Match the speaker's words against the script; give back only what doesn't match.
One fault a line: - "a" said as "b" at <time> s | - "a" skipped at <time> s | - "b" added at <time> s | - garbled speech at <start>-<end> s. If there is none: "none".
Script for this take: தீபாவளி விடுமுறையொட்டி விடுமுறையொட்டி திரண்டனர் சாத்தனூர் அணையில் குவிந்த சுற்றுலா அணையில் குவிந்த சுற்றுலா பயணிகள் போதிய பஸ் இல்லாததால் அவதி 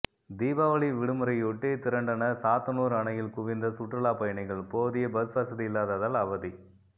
- "விடுமுறையொட்டி" skipped at 1.7 s
- "அணையில் குவிந்த சுற்றுலா" skipped at 4.1 s
- "வசதி" added at 5.4 s